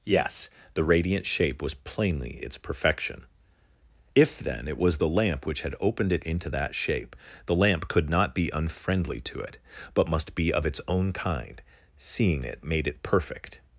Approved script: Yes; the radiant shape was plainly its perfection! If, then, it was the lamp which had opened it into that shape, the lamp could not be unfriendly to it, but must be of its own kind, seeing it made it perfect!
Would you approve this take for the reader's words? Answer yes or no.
yes